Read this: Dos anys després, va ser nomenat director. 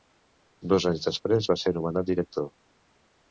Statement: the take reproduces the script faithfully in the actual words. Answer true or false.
true